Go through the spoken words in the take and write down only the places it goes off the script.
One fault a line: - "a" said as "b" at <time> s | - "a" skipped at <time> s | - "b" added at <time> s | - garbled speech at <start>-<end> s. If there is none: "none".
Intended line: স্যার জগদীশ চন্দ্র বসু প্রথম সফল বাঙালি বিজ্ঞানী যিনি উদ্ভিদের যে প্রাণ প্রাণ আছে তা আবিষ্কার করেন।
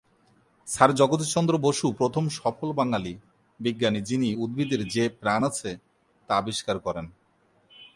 - "প্রাণ" skipped at 5.4 s